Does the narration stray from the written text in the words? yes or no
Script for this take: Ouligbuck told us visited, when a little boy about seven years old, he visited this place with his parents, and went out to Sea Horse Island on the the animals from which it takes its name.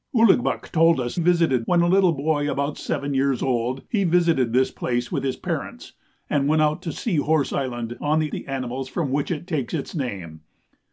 no